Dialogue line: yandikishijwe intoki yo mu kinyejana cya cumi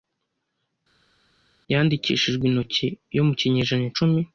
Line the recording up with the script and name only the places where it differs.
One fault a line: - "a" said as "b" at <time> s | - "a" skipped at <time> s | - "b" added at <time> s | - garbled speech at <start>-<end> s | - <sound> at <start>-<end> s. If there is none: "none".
- "cya" skipped at 3.9 s